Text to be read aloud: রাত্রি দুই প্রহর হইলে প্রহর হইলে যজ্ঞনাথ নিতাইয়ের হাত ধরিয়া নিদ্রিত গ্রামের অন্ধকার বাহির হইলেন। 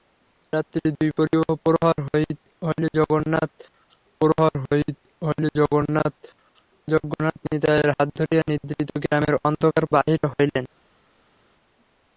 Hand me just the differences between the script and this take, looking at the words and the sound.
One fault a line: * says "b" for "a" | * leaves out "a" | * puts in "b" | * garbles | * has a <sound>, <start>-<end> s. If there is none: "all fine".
all fine